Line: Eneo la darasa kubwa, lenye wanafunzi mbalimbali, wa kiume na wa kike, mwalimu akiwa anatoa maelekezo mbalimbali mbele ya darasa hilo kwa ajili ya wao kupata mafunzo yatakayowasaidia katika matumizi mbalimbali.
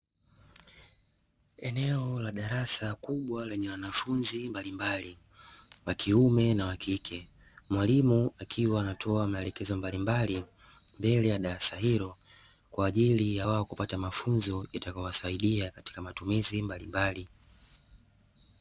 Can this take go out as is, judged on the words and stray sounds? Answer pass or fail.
pass